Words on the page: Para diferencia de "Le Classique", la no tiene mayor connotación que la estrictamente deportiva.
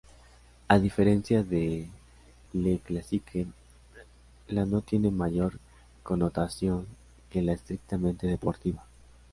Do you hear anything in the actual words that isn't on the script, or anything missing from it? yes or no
yes